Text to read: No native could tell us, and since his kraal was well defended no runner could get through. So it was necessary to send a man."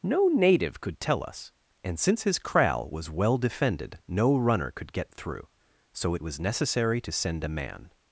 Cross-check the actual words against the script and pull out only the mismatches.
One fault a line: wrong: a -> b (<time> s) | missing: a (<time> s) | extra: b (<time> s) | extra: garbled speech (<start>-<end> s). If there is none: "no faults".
no faults